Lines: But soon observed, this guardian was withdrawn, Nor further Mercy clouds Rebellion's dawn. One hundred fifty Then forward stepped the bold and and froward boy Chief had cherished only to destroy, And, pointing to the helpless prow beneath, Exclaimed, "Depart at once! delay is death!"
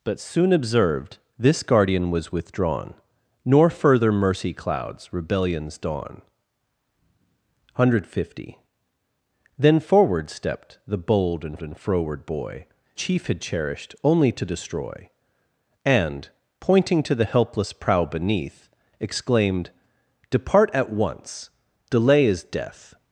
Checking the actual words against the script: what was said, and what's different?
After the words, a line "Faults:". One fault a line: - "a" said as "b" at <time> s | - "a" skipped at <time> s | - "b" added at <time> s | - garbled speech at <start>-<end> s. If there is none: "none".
But soon observed, this guardian was withdrawn, Nor further Mercy clouds Rebellion's dawn. One hundred fifty Then forward stepped the bold and and froward boy Chief had cherished only to destroy, And, pointing to the helpless prow beneath, Exclaimed, "Depart at once! delay is death!"
Faults:
none